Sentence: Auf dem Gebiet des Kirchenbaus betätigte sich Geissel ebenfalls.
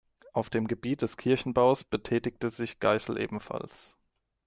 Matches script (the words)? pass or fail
pass